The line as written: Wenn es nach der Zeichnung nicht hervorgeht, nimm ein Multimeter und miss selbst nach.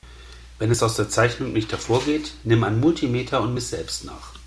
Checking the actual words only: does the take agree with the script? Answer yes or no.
no